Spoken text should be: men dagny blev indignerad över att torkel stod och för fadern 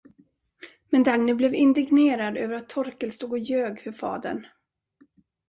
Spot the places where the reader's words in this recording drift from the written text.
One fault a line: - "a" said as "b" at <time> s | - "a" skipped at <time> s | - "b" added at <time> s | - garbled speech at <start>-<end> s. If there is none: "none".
- "ljög" added at 3.4 s